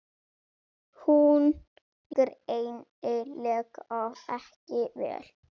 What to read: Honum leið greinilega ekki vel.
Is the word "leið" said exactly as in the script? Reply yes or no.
no